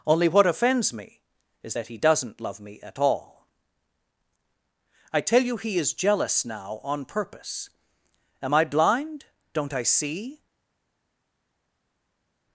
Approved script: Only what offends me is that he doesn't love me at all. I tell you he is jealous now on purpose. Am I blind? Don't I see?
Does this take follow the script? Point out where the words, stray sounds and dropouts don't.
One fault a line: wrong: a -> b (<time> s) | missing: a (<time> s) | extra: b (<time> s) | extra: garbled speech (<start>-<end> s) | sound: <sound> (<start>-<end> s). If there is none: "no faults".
no faults